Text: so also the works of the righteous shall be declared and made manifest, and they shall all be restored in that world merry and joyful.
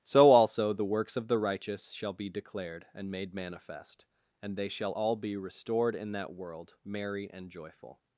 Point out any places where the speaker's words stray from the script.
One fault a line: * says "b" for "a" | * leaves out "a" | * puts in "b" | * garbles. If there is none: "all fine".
all fine